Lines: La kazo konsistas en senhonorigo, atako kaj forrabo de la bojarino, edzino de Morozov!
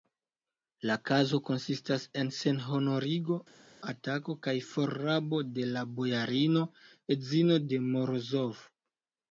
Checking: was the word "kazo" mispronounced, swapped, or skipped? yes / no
no